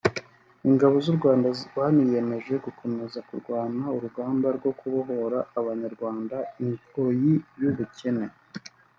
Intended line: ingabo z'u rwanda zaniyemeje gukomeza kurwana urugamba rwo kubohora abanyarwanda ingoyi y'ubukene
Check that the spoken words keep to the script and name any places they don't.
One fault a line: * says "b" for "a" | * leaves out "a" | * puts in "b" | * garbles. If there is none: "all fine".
all fine